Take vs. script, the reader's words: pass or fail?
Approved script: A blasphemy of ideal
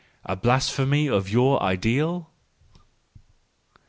fail